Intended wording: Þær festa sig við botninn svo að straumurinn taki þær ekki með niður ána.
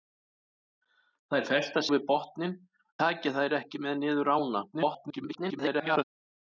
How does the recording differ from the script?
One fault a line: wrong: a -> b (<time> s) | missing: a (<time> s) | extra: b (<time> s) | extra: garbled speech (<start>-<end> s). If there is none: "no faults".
missing: sig (1.8 s)
missing: svo að straumurinn (2.6 s)
extra: garbled speech (4.7-6.0 s)